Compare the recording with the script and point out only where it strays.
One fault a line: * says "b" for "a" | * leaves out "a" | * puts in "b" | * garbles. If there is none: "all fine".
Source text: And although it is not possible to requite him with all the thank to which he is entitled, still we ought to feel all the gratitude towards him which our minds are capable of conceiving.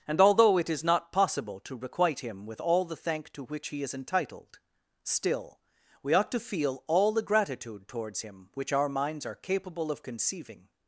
all fine